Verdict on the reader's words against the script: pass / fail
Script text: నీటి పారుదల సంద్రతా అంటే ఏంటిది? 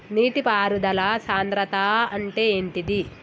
pass